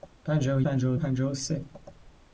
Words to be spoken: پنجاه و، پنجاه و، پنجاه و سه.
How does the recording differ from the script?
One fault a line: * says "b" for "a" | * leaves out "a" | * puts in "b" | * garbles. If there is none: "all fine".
all fine